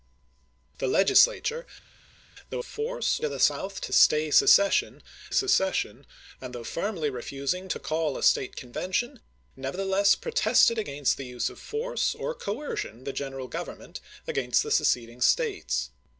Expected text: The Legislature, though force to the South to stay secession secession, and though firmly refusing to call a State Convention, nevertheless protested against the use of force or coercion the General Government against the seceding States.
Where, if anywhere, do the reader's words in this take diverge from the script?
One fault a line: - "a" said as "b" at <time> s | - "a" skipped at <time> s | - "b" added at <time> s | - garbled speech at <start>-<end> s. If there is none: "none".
none